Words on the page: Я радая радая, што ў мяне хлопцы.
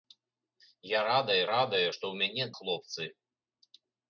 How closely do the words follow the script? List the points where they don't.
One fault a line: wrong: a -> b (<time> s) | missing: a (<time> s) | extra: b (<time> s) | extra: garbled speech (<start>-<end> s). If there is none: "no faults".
no faults